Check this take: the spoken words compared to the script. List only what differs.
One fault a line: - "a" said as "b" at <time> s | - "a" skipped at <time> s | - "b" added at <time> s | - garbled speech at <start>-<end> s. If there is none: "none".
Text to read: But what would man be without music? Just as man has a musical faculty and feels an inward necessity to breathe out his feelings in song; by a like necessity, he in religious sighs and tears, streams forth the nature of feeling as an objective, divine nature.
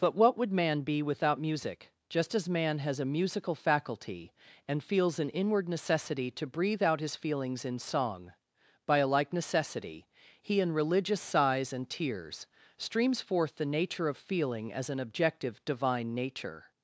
none